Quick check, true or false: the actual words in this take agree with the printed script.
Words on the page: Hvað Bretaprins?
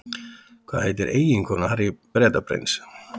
false